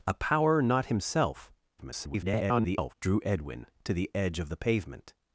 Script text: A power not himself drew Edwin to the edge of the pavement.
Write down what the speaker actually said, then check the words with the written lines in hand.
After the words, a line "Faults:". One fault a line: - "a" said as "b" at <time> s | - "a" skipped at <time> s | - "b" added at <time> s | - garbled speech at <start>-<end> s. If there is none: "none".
A power not himself [garbled] drew Edwin to the edge of the pavement.
Faults:
- garbled speech at 1.8-2.9 s